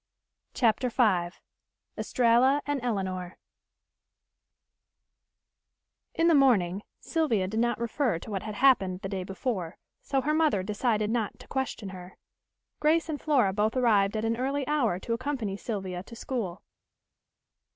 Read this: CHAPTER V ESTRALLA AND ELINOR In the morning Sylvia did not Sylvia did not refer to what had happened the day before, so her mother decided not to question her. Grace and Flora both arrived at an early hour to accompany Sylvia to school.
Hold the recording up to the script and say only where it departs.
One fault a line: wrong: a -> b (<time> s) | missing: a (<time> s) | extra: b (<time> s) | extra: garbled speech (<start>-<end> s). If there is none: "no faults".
missing: Sylvia did not (7.8 s)